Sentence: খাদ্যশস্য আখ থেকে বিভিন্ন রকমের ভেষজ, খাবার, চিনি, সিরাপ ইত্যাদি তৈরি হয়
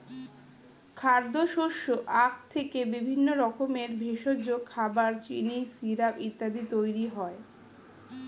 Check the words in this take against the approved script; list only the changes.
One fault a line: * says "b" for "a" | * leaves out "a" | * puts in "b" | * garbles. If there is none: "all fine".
all fine